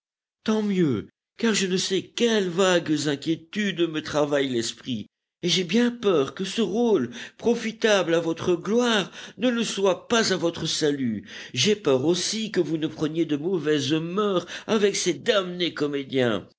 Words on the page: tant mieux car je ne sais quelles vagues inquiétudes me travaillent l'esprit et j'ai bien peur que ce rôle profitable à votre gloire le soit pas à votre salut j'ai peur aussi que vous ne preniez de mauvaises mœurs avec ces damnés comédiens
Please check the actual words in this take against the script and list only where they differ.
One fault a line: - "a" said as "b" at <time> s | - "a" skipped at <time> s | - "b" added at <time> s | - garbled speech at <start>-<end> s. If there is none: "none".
- "ne" added at 9.4 s